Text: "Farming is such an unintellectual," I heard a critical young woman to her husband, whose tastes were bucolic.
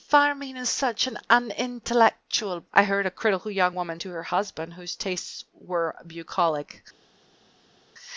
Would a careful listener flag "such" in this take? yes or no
no